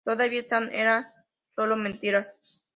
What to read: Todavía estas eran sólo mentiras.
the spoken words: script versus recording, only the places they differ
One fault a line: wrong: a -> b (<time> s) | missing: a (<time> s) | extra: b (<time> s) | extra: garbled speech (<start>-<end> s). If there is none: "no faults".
no faults